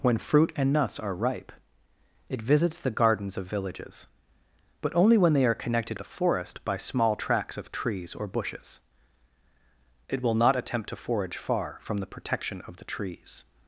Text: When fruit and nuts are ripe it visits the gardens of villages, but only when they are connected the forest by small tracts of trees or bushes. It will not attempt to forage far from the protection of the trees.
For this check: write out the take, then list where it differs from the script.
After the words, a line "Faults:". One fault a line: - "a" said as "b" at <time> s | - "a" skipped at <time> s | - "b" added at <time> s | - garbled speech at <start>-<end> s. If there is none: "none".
When fruit and nuts are ripe it visits the gardens of villages, but only when they are connected the forest by small tracts of trees or bushes. It will not attempt to forage far from the protection of the trees.
Faults:
none